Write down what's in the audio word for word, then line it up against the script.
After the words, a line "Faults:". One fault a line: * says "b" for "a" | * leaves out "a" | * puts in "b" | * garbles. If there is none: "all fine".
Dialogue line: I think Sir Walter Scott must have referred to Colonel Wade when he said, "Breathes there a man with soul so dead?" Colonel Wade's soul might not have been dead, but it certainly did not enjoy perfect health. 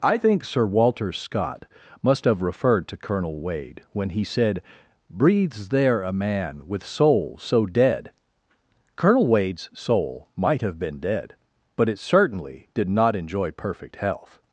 I think Sir Walter Scott must have referred to Colonel Wade when he said, "Breathes there a man with soul so dead?" Colonel Wade's soul might have been dead, but it certainly did not enjoy perfect health.
Faults:
* leaves out "not"